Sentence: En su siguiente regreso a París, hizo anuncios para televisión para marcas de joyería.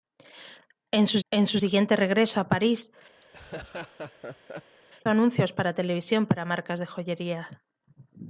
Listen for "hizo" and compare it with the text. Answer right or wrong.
wrong